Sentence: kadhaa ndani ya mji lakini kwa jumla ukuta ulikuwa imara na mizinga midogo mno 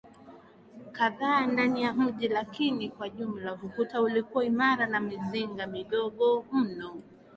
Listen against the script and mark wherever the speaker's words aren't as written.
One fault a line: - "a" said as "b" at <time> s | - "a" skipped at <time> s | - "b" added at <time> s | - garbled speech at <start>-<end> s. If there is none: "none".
none